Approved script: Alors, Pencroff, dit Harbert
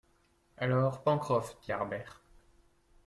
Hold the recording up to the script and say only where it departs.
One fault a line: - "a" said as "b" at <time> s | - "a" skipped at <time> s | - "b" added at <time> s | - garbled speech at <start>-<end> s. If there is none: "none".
none